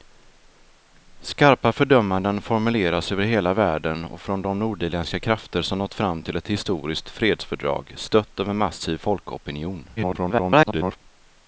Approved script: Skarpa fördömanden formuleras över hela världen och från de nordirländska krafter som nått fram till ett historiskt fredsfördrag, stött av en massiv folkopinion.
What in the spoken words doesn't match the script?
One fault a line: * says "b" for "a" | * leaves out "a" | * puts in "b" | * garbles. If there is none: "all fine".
* garbles